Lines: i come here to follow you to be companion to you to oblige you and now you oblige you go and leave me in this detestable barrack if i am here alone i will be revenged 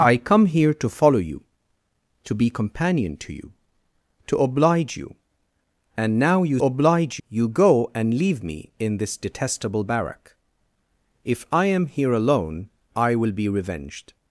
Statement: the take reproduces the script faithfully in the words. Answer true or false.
true